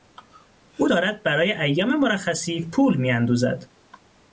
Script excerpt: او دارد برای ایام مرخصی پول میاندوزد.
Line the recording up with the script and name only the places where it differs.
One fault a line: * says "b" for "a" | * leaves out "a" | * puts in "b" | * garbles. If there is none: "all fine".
all fine